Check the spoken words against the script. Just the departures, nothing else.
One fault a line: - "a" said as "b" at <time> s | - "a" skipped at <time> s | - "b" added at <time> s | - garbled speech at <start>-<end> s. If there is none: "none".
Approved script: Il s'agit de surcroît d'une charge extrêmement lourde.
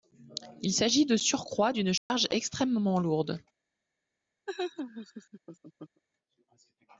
none